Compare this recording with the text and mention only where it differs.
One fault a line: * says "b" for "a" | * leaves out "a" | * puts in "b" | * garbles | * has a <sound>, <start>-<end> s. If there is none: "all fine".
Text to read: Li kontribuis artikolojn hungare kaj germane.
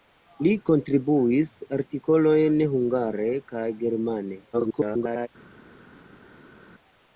* garbles